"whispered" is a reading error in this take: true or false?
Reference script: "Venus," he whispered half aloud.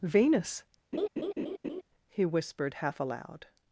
false